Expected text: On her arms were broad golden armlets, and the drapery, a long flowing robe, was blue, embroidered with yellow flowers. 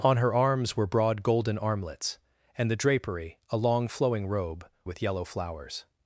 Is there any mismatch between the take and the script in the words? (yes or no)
yes